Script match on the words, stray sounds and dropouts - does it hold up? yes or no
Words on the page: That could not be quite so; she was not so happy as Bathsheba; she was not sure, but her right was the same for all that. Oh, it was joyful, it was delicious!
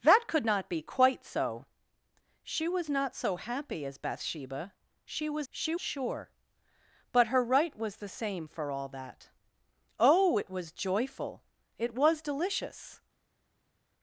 no